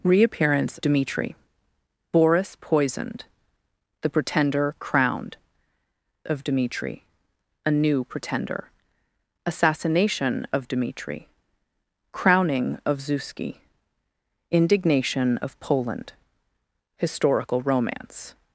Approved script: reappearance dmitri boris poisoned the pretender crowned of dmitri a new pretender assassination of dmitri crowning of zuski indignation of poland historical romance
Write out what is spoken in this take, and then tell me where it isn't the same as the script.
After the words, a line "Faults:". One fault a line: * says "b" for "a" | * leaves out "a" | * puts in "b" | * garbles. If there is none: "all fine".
reappearance dmitri boris poisoned the pretender crowned of dmitri a new pretender assassination of dmitri crowning of zuski indignation of poland historical romance
Faults:
all fine